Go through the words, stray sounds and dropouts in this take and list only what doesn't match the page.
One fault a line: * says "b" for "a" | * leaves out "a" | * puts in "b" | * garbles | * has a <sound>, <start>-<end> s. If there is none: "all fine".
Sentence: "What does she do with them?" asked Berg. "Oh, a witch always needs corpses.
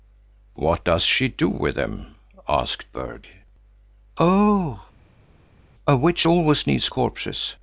all fine